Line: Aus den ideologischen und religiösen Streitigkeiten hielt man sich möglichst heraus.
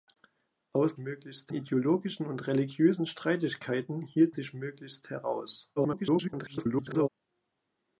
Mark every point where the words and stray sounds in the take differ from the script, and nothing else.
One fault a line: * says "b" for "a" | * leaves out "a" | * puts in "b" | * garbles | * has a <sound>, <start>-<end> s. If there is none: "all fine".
* says "möglichst" for "den"
* leaves out "man"
* garbles